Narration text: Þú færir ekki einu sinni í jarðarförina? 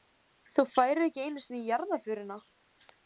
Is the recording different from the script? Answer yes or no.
no